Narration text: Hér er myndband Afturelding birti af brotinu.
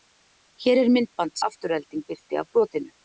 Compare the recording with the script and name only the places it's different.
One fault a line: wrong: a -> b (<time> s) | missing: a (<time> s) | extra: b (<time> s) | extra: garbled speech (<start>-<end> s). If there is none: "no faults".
no faults